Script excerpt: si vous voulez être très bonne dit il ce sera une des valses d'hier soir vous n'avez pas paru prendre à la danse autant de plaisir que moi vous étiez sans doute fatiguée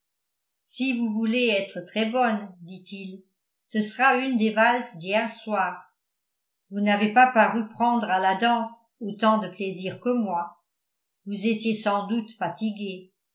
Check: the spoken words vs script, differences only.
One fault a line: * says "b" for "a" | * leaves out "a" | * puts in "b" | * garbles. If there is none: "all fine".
all fine